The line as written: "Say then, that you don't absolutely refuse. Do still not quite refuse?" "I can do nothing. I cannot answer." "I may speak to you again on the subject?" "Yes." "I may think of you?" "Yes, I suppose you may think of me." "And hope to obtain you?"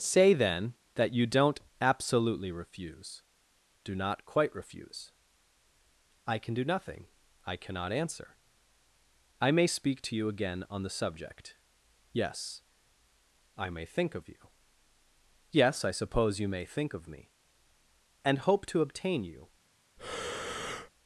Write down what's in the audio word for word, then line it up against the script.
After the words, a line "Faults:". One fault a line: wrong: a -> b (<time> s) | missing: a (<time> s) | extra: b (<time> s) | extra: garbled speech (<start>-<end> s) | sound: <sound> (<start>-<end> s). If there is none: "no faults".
"Say then, that you don't absolutely refuse. Do not quite refuse?" "I can do nothing. I cannot answer." "I may speak to you again on the subject?" "Yes." "I may think of you?" "Yes, I suppose you may think of me." "And hope to obtain you?"
Faults:
missing: still (3.9 s)
sound: breath (20.0-20.9 s)